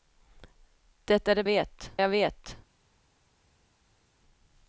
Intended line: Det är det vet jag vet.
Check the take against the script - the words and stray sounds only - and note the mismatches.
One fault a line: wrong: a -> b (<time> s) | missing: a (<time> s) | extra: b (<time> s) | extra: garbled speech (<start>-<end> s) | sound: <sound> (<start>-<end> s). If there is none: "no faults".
no faults